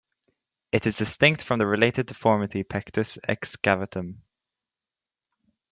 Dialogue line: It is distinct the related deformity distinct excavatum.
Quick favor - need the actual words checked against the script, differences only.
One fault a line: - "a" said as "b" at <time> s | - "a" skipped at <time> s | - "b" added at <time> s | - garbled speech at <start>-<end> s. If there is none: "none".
- "from" added at 1.4 s
- "distinct" said as "pectus" at 2.6 s